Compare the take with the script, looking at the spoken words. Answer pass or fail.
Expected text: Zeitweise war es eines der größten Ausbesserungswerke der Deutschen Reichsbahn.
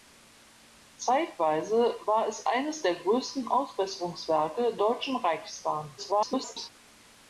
fail